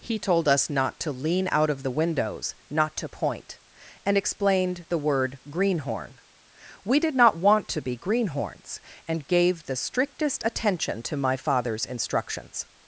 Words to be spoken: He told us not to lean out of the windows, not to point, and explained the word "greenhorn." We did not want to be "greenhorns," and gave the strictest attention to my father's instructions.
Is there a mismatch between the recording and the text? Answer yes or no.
no